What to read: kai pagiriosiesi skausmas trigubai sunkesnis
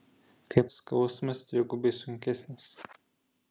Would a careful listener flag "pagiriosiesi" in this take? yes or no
yes